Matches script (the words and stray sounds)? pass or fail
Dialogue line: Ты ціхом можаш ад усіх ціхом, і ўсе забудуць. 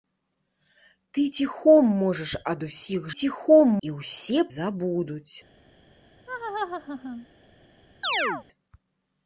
fail